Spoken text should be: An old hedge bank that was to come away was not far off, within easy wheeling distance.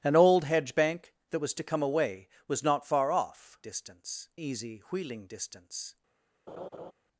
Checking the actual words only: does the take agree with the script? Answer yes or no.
no